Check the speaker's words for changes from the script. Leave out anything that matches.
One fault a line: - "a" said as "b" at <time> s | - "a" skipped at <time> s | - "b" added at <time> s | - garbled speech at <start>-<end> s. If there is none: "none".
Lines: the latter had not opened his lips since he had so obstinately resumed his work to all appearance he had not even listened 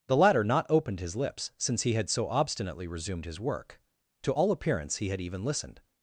- "had" skipped at 0.4 s
- "not" skipped at 5.2 s